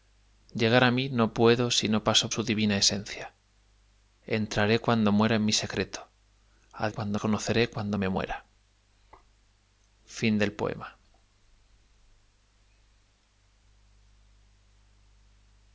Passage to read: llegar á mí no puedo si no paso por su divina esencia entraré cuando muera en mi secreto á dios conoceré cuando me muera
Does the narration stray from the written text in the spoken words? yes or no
yes